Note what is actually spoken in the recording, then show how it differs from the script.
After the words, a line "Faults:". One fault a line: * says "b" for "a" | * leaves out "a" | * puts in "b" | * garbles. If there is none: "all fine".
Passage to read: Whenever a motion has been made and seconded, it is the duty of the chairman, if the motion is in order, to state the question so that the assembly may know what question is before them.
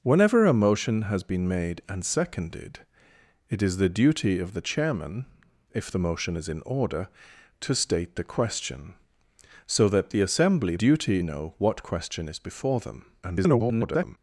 Whenever a motion has been made and seconded, it is the duty of the chairman, if the motion is in order, to state the question so that the assembly duty know what question is before them. [garbled]
Faults:
* says "duty" for "may"
* garbles